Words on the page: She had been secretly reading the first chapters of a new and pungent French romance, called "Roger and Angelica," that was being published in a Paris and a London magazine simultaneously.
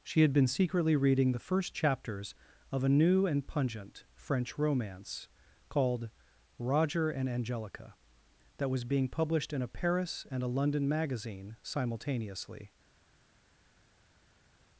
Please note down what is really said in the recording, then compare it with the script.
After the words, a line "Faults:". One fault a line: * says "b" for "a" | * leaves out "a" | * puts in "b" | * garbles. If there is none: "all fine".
She had been secretly reading the first chapters of a new and pungent French romance, called "Roger and Angelica," that was being published in a Paris and a London magazine simultaneously.
Faults:
all fine